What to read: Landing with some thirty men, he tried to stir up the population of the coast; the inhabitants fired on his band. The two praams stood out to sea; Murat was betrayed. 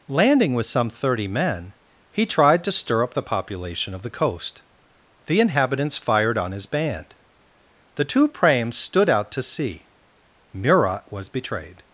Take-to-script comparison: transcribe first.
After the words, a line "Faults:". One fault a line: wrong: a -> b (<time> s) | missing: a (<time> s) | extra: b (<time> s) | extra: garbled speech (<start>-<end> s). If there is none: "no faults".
Landing with some thirty men, he tried to stir up the population of the coast; the inhabitants fired on his band. The two praams stood out to sea; Murat was betrayed.
Faults:
no faults